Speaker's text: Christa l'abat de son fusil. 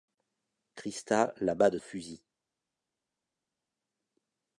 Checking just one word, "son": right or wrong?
wrong